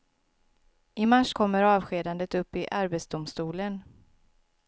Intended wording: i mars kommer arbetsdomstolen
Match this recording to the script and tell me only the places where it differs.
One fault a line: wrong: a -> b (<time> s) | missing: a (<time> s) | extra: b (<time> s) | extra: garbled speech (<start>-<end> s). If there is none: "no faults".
extra: avskedandet upp i (1.6 s)